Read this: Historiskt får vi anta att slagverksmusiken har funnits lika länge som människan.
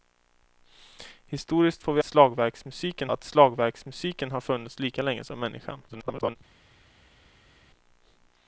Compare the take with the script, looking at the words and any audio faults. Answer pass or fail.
fail